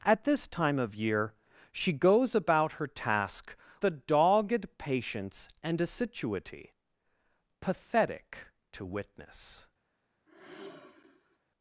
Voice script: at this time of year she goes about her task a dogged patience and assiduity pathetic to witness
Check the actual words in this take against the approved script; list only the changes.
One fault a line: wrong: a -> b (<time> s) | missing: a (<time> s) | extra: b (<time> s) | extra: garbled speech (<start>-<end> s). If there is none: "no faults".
no faults